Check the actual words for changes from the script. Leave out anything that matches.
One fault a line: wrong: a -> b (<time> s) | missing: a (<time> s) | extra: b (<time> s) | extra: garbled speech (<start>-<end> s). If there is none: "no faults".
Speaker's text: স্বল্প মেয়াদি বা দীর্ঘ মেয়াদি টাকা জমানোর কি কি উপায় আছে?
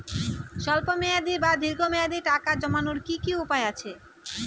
no faults